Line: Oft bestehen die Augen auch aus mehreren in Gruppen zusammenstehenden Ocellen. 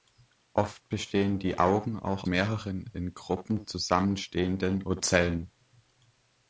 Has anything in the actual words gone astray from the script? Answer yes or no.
yes